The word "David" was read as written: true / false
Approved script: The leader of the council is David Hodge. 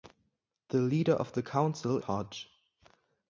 false